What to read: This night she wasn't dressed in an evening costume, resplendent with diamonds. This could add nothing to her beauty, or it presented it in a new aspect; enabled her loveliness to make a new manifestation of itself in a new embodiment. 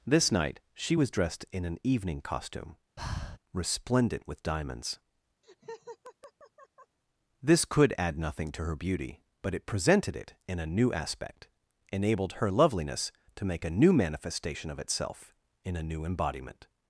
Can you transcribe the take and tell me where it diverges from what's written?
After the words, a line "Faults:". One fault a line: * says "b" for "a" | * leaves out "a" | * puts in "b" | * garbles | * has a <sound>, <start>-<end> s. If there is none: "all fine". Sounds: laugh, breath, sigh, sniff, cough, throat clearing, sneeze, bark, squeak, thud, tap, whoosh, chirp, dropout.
This night she was dressed in an evening costume, resplendent with diamonds. This could add nothing to her beauty, but it presented it in a new aspect; enabled her loveliness to make a new manifestation of itself in a new embodiment.
Faults:
* says "was" for "wasn't"
* has a breath, 3.0-3.4 s
* has a laugh, 5.4-7.0 s
* says "but" for "or"